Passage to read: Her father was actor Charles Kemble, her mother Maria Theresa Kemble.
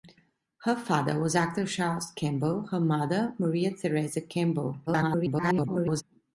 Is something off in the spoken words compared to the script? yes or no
yes